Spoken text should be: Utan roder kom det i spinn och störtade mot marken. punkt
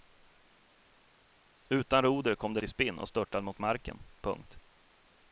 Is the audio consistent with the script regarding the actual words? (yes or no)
yes